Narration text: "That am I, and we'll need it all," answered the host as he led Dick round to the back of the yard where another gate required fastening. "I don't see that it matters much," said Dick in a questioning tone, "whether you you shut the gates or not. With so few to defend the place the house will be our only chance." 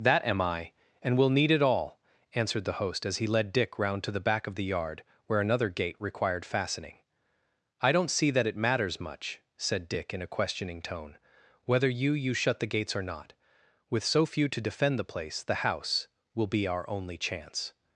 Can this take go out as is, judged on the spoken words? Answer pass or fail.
pass